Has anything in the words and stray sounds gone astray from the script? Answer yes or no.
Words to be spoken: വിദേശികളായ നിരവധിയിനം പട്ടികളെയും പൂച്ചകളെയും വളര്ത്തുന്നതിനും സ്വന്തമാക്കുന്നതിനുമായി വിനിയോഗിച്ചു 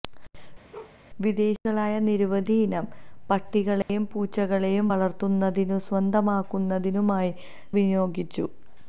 yes